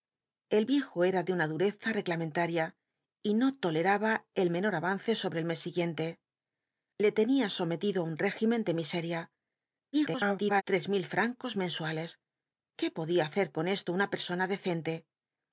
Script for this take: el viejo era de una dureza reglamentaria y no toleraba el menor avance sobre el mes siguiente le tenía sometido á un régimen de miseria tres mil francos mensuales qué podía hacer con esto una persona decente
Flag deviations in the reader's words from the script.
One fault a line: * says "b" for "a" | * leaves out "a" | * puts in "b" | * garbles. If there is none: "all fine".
* garbles